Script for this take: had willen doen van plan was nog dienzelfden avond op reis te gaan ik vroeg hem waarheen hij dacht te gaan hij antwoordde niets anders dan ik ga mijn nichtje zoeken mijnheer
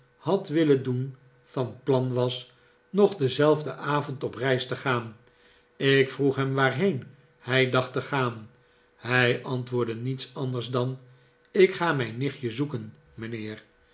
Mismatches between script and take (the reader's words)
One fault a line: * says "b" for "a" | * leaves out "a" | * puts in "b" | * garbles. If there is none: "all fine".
all fine